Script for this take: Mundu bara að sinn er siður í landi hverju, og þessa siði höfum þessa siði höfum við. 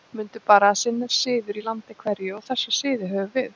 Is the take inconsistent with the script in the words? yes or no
yes